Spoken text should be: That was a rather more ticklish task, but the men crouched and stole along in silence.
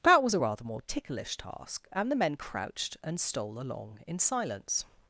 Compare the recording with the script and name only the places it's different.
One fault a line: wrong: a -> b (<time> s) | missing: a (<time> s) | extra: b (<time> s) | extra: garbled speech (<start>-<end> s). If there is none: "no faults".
wrong: but -> and (1.9 s)